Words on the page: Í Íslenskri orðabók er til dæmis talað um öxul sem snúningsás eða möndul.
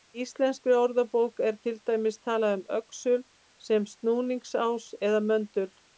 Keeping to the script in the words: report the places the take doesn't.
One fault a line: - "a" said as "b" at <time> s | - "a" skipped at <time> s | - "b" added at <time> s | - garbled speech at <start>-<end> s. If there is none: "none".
none